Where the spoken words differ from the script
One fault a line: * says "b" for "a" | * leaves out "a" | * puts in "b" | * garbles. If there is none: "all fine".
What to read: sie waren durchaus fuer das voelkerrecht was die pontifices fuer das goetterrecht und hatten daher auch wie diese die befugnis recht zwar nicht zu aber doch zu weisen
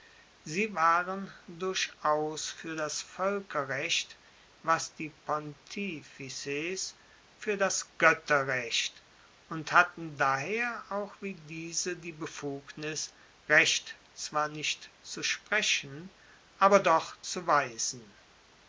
* puts in "sprechen"